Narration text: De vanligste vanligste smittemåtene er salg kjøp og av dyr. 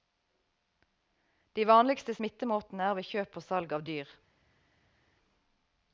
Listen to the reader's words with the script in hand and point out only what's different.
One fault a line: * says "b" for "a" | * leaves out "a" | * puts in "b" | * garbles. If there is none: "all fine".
* leaves out "vanligste"
* says "ved" for "salg"
* puts in "salg"